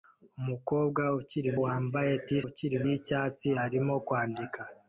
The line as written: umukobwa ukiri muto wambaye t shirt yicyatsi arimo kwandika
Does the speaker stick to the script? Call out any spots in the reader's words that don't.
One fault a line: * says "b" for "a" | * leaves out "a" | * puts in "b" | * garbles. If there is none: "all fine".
* leaves out "muto"
* says "ukiri" for "shirt"